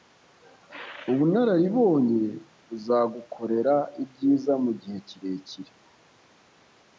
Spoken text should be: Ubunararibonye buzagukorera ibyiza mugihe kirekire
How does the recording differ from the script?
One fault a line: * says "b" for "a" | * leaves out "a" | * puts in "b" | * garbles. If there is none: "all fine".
all fine